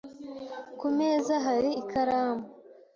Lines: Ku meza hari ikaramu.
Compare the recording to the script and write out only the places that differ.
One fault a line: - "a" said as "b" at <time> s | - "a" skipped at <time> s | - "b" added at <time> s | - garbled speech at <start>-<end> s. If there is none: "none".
none